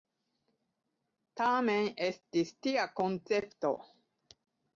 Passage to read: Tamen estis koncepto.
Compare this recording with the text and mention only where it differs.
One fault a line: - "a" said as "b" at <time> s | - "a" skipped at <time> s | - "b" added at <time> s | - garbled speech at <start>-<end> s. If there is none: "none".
- "tia" added at 2.7 s